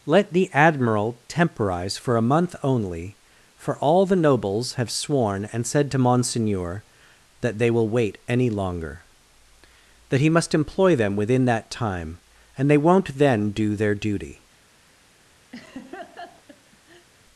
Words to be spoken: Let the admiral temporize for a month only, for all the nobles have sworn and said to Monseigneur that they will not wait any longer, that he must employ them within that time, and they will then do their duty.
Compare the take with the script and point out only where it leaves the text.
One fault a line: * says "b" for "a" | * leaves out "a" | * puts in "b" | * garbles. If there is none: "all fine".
* leaves out "not"
* says "won't" for "will"